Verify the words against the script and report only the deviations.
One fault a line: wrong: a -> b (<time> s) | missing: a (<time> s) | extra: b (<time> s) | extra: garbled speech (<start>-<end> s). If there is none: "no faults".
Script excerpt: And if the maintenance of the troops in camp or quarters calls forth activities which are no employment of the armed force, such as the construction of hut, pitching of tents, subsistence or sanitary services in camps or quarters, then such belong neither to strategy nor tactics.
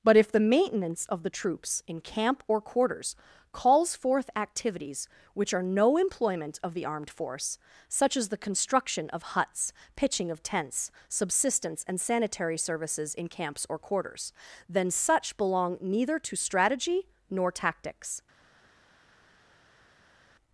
wrong: And -> But (0.0 s)
wrong: hut -> huts (9.2 s)
wrong: or -> and (11.9 s)